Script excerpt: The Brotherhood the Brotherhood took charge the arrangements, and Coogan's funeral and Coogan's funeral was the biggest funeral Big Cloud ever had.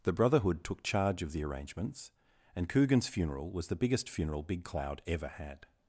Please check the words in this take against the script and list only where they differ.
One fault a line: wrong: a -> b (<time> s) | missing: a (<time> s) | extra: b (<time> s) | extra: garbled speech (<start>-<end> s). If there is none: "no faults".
missing: the Brotherhood (0.6 s)
extra: of (1.2 s)
missing: and Coogan's funeral (3.5 s)